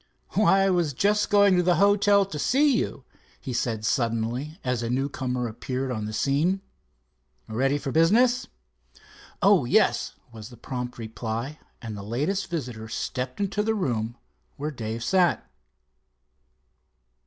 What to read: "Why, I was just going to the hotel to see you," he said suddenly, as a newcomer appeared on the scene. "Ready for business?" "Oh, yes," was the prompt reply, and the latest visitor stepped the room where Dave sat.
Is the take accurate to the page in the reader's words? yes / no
no